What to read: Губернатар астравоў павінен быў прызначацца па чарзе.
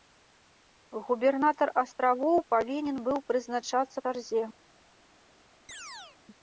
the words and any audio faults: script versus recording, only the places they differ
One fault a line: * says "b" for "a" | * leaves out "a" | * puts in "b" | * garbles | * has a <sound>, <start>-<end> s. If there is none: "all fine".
* leaves out "па"
* has a chirp, 5.7-6.2 s